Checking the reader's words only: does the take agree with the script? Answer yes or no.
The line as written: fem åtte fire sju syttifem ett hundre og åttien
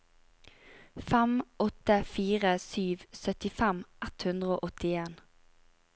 yes